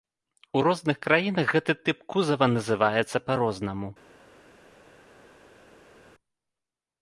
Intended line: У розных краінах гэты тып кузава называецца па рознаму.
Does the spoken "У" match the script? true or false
true